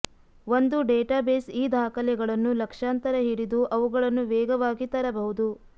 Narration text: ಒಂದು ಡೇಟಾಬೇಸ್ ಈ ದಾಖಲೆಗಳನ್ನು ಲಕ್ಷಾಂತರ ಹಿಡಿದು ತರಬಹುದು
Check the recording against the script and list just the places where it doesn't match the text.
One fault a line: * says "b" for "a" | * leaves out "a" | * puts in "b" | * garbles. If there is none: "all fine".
* puts in "ಅವುಗಳನ್ನು ವೇಗವಾಗಿ"